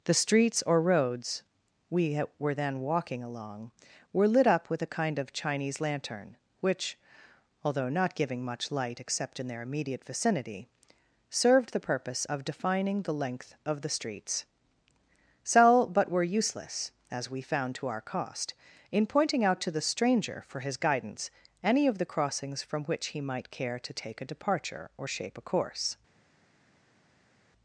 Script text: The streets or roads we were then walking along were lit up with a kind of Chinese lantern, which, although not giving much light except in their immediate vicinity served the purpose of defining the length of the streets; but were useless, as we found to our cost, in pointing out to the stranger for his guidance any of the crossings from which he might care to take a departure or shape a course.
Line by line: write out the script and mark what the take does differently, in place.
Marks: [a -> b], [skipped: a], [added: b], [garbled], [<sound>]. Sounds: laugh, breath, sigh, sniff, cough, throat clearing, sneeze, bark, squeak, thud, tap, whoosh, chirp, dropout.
The streets or roads we were then walking along were lit up with a kind of Chinese lantern, which, although not giving much light except in their immediate vicinity served the purpose of defining the length of the streets; [added: sell] but were useless, as we found to our cost, in pointing out to the stranger for his guidance any of the crossings from which he might care to take a departure or shape a course.